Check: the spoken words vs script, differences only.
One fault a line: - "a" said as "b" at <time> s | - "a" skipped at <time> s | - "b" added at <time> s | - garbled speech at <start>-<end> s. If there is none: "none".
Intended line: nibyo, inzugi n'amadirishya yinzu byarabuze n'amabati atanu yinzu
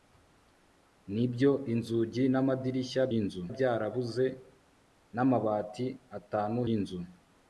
none